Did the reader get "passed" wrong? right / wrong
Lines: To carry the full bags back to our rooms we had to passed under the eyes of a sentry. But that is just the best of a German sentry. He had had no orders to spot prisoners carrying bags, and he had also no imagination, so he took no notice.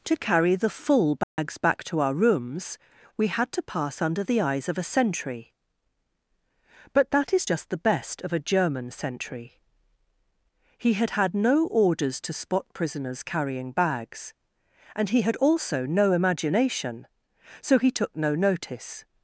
wrong